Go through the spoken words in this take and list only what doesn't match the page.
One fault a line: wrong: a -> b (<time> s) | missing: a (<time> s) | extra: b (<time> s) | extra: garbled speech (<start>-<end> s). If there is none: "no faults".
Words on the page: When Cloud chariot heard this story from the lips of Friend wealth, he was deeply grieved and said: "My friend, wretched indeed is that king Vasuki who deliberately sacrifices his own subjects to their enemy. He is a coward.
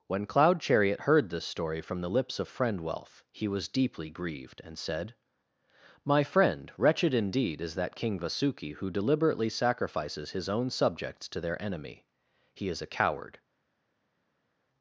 no faults